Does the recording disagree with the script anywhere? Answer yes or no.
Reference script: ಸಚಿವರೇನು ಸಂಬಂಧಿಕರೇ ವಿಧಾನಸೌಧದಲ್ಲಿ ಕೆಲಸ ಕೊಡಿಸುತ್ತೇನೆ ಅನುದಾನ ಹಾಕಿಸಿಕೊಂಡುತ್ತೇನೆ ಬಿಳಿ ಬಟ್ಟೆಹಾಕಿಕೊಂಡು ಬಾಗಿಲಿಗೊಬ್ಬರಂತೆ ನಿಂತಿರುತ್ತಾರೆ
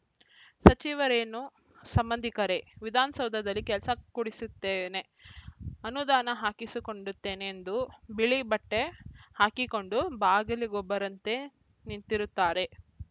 yes